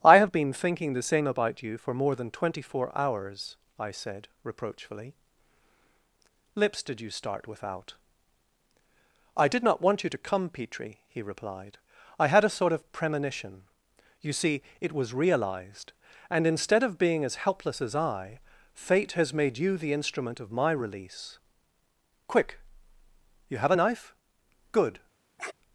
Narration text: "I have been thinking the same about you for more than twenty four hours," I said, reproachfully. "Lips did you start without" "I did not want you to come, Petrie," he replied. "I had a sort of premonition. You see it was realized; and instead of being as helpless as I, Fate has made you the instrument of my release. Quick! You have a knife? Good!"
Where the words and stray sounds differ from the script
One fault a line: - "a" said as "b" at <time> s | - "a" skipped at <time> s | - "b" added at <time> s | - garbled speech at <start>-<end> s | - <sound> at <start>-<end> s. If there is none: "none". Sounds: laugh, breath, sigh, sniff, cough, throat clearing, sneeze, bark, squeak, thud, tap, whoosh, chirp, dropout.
- sniff at 25.4-25.5 s